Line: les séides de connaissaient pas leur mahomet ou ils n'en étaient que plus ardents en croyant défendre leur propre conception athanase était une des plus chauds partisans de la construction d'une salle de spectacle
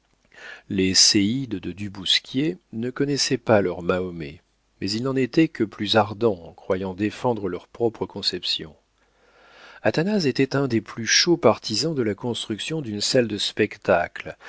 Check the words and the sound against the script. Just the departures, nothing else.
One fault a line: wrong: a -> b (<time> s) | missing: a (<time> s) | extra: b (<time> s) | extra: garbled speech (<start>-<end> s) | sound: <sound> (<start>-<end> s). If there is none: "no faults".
extra: du bousquier ne (1.7 s)
wrong: ou -> mais (4.8 s)
wrong: une -> un (10.6 s)